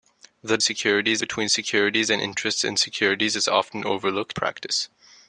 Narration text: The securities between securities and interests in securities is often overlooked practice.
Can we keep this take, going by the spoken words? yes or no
yes